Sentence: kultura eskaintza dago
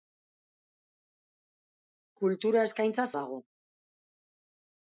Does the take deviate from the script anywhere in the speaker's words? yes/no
no